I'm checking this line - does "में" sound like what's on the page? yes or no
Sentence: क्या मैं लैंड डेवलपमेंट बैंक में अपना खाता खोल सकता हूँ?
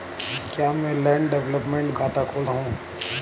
no